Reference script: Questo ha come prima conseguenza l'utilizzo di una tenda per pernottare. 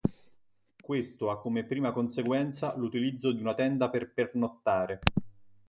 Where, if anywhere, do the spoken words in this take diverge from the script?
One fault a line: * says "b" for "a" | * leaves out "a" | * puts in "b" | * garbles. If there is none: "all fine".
all fine